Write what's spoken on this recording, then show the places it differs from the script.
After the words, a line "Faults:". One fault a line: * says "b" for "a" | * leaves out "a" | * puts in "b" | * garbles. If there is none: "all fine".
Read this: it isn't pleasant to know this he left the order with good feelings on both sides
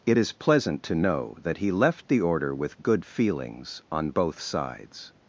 it is pleasant to know that he left the order with good feelings on both sides
Faults:
* says "is" for "isn't"
* says "that" for "this"